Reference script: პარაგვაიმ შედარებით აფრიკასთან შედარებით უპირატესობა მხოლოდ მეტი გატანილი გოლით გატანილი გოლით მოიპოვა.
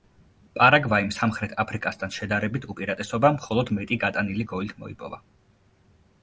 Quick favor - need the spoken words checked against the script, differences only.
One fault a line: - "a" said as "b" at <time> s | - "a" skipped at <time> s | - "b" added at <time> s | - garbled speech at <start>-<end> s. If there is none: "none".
- "შედარებით" said as "სამხრეთ" at 1.1 s
- "გატანილი გოლით" skipped at 4.8 s